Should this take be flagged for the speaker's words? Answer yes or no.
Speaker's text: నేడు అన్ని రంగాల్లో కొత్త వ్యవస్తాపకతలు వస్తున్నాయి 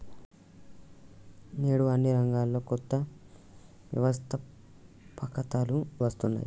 no